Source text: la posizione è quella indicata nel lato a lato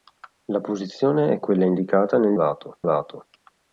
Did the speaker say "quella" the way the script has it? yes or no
yes